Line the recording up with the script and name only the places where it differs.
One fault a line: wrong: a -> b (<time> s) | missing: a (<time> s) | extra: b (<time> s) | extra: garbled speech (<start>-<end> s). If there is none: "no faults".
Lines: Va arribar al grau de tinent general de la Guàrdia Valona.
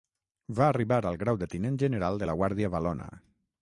no faults